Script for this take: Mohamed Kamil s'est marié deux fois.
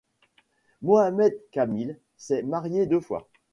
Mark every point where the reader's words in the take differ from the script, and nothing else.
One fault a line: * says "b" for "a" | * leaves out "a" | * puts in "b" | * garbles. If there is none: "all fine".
all fine